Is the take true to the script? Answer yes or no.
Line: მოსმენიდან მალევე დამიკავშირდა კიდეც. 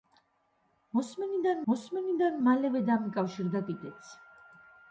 no